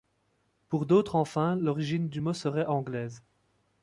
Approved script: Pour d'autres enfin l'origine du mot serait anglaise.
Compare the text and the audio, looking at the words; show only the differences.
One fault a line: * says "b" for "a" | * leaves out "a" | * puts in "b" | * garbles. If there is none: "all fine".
all fine